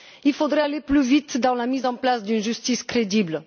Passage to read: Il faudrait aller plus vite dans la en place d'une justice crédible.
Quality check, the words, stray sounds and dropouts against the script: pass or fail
fail